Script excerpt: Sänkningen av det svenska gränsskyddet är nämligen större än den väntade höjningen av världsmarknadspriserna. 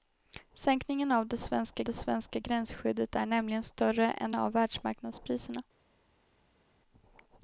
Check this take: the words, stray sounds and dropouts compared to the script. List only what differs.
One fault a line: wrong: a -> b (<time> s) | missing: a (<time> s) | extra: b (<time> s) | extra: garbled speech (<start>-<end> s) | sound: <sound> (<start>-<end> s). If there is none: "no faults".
extra: det svenska (1.8 s)
missing: den väntade höjningen (4.3 s)